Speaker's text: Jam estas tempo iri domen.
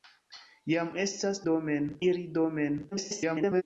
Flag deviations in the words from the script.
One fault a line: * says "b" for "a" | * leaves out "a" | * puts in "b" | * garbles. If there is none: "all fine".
* says "domen" for "tempo"
* garbles